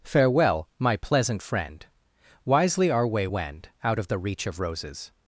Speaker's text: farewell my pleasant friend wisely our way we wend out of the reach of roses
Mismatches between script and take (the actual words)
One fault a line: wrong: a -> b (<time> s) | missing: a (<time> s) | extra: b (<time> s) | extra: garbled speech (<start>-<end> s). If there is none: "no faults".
missing: we (3.3 s)